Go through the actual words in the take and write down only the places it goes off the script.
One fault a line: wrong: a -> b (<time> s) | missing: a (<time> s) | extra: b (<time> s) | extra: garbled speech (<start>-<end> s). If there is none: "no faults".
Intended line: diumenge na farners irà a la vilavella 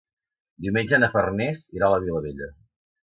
no faults